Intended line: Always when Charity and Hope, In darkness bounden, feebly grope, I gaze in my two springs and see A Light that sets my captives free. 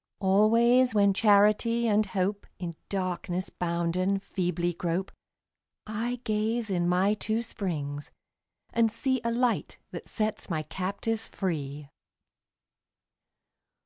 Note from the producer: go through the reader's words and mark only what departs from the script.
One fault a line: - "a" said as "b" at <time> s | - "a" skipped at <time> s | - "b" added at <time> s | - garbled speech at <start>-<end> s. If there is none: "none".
none